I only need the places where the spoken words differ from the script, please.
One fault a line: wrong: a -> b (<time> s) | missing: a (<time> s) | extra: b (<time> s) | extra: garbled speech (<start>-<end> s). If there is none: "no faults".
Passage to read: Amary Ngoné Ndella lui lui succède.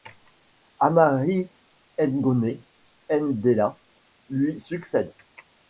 missing: lui (4.6 s)